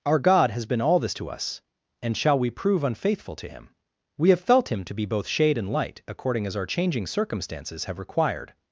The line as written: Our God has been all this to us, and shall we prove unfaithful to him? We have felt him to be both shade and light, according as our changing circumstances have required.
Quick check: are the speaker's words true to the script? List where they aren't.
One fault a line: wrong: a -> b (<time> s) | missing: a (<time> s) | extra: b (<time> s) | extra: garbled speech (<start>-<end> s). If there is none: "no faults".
no faults